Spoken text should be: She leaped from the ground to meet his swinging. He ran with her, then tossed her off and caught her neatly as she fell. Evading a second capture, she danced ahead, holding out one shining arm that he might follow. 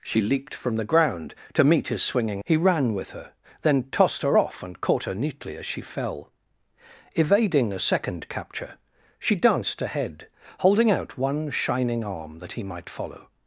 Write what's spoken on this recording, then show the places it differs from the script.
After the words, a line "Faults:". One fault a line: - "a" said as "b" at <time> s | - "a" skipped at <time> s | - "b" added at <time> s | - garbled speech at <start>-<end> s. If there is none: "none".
She leaped from the ground to meet his swinging. He ran with her, then tossed her off and caught her neatly as she fell. Evading a second capture, she danced ahead, holding out one shining arm that he might follow.
Faults:
none